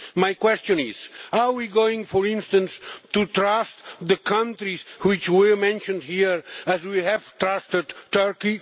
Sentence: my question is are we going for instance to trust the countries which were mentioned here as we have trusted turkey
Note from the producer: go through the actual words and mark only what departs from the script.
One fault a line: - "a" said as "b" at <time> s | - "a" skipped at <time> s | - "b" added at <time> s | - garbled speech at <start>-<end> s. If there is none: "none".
none